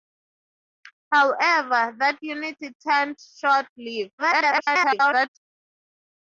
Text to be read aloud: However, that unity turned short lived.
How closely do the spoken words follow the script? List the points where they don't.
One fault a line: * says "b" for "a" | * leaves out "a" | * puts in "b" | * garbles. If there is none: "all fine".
* garbles